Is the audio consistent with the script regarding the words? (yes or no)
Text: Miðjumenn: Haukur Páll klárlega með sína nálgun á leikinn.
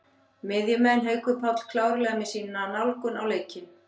yes